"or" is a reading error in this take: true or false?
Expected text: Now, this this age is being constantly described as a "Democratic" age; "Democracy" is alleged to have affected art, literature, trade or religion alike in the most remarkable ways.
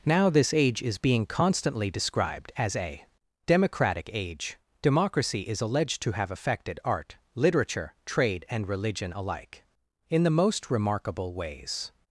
true